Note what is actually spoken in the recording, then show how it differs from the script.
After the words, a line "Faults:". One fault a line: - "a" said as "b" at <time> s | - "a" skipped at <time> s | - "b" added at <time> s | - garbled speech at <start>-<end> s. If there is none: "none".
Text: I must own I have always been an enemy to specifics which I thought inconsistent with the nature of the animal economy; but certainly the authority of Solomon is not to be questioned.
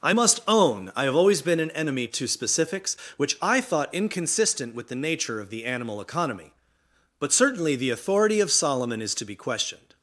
I must own I have always been an enemy to specifics which I thought inconsistent with the nature of the animal economy; but certainly the authority of Solomon is to be questioned.
Faults:
- "not" skipped at 9.1 s